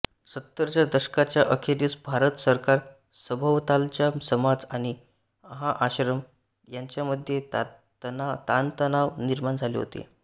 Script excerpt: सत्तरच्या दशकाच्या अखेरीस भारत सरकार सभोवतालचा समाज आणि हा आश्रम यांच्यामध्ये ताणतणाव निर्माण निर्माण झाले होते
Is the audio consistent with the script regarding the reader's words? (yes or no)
no